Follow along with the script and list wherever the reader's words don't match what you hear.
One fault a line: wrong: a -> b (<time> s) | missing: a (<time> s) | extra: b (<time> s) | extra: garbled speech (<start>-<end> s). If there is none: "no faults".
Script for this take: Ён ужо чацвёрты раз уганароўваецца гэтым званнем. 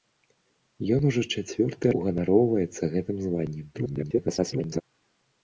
missing: раз (1.9 s)
extra: garbled speech (3.7-4.8 s)